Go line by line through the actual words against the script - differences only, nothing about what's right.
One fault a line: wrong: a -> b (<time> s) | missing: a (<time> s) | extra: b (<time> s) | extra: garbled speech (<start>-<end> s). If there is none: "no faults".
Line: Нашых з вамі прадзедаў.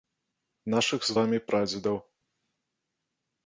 no faults